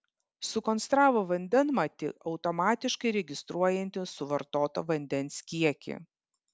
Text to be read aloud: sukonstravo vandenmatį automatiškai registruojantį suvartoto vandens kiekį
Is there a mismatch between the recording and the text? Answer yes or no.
no